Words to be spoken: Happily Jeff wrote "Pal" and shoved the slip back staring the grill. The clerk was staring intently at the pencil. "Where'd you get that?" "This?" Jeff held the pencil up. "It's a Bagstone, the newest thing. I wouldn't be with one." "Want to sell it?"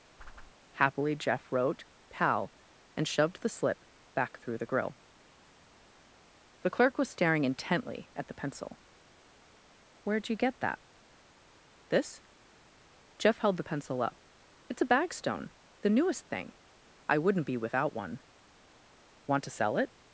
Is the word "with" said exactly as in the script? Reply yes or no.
no